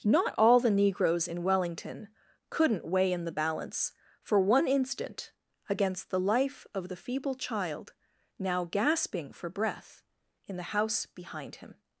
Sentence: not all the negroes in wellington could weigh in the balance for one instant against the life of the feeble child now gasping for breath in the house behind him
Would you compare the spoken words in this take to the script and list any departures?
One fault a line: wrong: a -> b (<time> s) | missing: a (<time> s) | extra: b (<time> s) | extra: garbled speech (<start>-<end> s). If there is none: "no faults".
wrong: could -> couldn't (2.5 s)